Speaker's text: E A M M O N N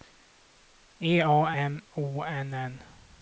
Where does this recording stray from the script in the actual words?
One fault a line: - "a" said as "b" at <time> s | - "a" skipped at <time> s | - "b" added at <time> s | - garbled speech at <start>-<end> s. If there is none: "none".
- "M" skipped at 1.8 s